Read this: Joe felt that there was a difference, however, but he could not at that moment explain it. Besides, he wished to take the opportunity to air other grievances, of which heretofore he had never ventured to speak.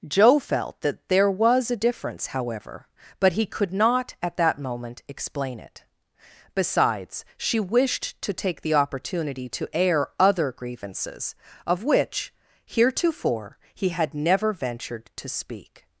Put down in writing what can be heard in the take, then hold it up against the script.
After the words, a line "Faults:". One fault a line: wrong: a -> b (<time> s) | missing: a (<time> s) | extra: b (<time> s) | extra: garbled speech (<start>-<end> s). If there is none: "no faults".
Joe felt that there was a difference, however, but he could not at that moment explain it. Besides, she wished to take the opportunity to air other grievances, of which heretofore he had never ventured to speak.
Faults:
wrong: he -> she (7.4 s)